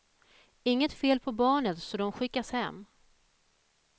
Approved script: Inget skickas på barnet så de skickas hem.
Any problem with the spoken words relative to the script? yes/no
yes